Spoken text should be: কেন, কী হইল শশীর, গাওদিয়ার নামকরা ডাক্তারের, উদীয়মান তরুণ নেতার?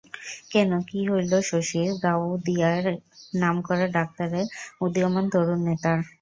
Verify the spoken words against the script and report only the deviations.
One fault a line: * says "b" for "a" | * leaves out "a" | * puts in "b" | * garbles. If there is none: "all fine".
all fine